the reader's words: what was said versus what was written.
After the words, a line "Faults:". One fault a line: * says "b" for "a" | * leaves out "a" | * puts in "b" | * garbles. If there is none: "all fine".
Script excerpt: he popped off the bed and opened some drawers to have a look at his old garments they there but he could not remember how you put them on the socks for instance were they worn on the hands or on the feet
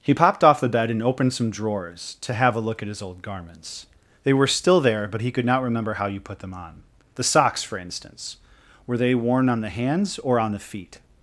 he popped off the bed and opened some drawers to have a look at his old garments they were still there but he could not remember how you put them on the socks for instance were they worn on the hands or on the feet
Faults:
* puts in "were still"